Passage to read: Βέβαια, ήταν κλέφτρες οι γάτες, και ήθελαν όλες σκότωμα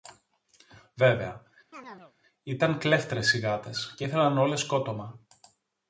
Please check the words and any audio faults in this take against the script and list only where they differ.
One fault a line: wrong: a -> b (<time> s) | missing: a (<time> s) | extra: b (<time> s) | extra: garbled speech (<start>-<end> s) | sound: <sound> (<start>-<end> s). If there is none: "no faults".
sound: chirp (1.7-2.1 s)